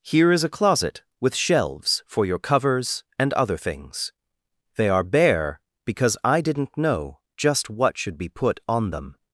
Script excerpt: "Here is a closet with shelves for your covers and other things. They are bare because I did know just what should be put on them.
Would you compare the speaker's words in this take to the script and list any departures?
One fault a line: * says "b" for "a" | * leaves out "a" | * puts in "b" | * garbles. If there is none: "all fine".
* says "didn't" for "did"